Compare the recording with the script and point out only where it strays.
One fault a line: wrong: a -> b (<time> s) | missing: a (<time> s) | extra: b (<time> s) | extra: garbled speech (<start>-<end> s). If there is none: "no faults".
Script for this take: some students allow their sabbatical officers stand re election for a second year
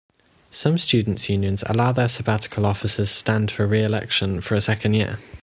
extra: unions (1.3 s)
extra: for (3.5 s)